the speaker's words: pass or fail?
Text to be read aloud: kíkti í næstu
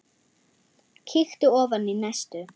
fail